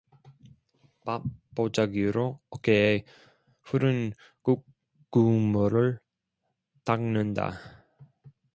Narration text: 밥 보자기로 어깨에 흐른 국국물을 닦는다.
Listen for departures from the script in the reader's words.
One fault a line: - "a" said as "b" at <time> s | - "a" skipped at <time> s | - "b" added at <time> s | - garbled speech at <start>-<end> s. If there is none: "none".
none